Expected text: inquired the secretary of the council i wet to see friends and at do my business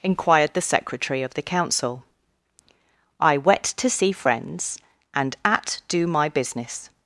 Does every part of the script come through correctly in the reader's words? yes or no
yes